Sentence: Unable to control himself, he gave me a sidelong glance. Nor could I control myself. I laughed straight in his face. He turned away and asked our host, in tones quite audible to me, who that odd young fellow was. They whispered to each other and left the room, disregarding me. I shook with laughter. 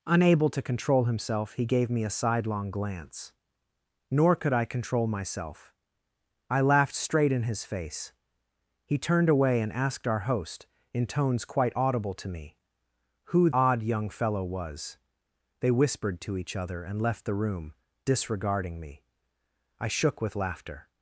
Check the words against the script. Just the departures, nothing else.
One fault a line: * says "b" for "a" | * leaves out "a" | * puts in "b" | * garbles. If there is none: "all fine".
* leaves out "that"